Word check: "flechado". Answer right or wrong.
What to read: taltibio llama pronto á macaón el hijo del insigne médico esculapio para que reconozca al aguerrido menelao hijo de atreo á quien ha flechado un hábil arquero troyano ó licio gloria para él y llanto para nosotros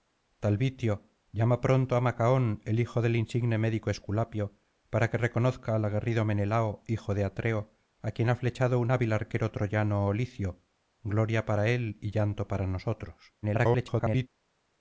right